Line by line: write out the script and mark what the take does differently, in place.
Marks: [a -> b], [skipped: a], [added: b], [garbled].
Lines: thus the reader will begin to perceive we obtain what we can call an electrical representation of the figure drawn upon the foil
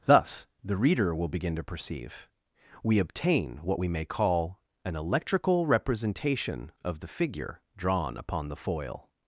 thus the reader will begin to perceive we obtain what we [can -> may] call an electrical representation of the figure drawn upon the foil